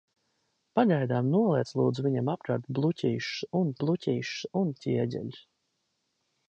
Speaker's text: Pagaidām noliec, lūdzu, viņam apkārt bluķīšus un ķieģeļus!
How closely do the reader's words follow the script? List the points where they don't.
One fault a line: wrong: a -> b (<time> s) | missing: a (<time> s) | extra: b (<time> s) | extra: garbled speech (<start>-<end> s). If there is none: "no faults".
extra: bluķīšus un (3.8 s)